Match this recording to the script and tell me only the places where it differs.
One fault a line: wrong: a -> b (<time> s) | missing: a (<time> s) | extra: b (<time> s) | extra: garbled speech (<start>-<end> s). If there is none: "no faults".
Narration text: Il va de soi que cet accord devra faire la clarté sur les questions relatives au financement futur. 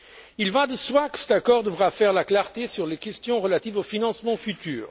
no faults